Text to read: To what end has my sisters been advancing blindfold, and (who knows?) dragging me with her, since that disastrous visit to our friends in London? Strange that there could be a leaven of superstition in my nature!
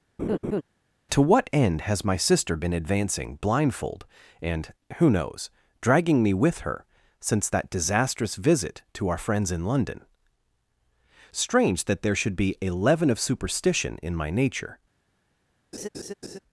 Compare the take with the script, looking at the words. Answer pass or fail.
fail